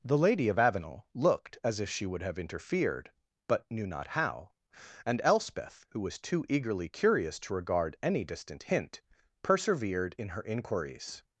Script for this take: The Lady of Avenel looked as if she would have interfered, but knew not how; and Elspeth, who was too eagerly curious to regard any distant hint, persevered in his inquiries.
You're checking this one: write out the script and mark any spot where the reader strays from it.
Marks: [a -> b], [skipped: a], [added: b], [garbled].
The Lady of Avenel looked as if she would have interfered, but knew not how; and Elspeth, who was too eagerly curious to regard any distant hint, persevered in [his -> her] inquiries.